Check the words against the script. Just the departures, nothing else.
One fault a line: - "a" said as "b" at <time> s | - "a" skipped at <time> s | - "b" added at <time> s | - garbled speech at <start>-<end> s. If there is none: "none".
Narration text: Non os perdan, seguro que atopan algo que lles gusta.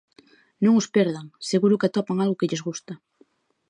none